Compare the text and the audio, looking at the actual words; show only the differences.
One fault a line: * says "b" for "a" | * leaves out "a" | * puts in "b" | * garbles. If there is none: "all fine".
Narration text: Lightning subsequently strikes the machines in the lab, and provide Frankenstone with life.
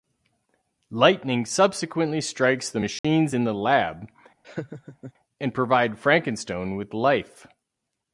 all fine